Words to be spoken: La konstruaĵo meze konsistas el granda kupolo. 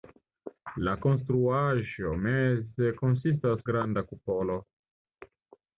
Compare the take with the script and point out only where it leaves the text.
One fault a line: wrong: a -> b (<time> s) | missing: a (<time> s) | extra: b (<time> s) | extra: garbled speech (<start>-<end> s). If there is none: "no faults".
missing: el (3.6 s)